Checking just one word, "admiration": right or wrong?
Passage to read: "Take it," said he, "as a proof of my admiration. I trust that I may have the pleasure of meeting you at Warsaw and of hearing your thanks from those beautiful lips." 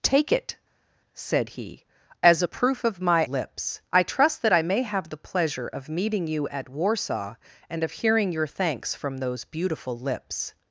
wrong